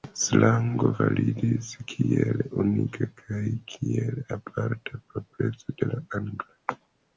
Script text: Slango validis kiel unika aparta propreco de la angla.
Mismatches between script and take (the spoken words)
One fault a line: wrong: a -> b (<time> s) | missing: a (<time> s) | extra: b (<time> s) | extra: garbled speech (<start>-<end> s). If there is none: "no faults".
extra: kaj kiel (3.2 s)